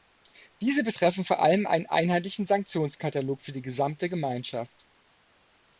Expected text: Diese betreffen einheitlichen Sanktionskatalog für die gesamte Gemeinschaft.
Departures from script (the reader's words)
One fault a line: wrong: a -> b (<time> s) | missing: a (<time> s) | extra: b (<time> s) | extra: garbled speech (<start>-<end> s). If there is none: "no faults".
extra: vor allem einen (1.2 s)